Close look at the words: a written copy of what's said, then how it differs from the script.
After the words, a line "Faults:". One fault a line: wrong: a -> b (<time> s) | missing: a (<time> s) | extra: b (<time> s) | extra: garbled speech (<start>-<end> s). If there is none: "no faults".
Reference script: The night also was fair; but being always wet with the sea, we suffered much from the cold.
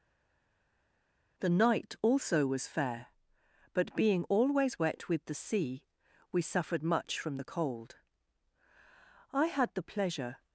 The night also was fair; but being always wet with the sea, we suffered much from the cold. I had the pleasure
Faults:
extra: I had the pleasure (9.3 s)